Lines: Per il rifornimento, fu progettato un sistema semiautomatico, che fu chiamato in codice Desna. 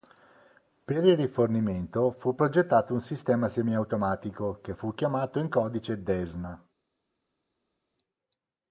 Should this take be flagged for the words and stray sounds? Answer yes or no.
no